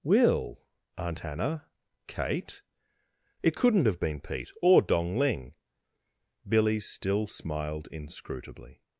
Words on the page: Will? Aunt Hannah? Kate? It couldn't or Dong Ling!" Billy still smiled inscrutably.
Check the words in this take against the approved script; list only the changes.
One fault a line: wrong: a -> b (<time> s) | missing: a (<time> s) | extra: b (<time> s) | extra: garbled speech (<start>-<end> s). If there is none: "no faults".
extra: have been Pete (3.9 s)